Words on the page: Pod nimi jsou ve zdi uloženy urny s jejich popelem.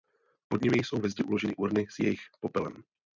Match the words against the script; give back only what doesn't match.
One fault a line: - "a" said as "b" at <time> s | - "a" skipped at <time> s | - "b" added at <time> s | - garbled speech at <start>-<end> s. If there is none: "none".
none